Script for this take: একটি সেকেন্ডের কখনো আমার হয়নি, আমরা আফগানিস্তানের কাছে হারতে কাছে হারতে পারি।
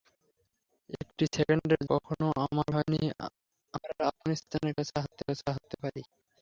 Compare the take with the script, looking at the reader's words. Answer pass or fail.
pass